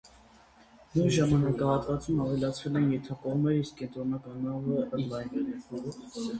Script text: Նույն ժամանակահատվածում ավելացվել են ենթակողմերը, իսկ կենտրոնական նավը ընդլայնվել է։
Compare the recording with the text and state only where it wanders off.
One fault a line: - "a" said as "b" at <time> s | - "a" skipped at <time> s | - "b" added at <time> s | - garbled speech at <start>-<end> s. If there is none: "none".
none